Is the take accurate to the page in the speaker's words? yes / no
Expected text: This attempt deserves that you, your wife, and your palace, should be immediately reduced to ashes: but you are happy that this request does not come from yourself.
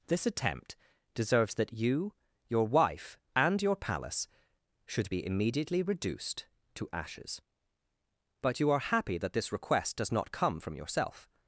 yes